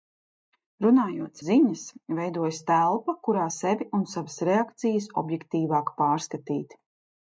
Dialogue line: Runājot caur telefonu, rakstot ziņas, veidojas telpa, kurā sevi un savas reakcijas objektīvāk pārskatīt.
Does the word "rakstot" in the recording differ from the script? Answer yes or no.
yes